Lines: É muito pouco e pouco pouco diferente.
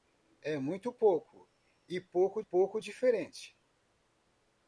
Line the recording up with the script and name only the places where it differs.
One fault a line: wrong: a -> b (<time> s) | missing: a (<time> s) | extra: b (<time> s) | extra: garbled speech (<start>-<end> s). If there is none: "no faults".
no faults